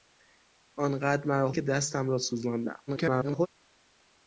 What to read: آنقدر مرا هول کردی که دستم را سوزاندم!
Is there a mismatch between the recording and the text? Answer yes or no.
yes